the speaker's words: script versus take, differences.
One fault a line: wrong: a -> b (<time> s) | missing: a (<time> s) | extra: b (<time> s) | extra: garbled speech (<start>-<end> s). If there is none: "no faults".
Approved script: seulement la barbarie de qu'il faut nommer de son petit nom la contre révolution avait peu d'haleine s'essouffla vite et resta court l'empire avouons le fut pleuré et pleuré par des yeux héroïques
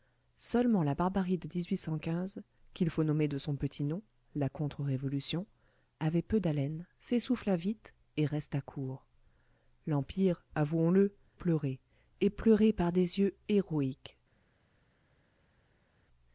missing: fut (11.2 s)